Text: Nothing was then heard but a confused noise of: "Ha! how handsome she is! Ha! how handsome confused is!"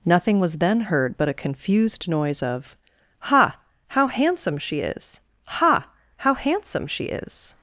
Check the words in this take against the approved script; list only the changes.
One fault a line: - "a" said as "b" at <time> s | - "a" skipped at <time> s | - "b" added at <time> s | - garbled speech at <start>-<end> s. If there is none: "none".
- "confused" said as "she" at 6.9 s